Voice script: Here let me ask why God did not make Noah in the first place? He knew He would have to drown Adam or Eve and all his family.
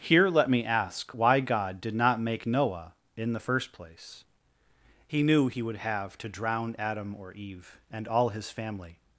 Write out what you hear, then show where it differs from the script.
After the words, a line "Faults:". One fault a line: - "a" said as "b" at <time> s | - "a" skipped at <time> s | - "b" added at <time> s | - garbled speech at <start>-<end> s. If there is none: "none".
Here let me ask why God did not make Noah in the first place? He knew He would have to drown Adam or Eve and all his family.
Faults:
none